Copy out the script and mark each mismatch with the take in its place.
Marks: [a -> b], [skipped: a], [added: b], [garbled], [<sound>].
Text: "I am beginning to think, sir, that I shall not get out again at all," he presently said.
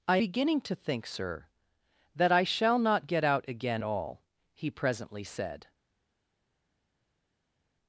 "I [skipped: am] beginning to think, sir, that I shall not get out again [skipped: at] all," he presently said.